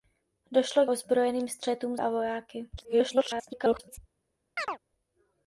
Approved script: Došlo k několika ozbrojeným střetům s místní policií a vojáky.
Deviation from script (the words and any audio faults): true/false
true